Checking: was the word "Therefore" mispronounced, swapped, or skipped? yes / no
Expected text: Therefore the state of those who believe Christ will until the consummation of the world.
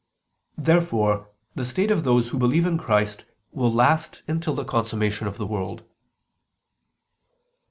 no